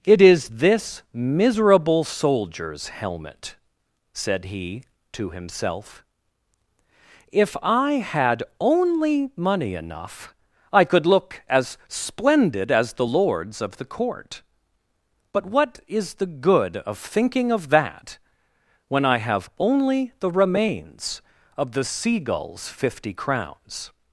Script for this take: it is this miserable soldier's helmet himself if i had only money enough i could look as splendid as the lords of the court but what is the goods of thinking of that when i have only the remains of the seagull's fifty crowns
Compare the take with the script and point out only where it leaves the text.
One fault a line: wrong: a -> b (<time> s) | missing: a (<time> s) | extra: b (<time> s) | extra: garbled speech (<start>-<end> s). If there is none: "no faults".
extra: said he to (4.1 s)
wrong: goods -> good (16.3 s)